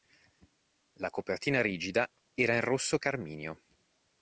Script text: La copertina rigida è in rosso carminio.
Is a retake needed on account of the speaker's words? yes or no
yes